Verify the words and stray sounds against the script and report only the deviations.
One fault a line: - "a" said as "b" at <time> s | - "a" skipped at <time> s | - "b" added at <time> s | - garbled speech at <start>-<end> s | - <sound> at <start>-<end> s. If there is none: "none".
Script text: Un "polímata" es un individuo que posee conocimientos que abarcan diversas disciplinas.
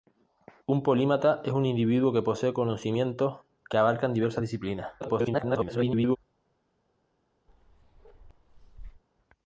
- garbled speech at 5.0-6.2 s
- bark at 7.5-9.0 s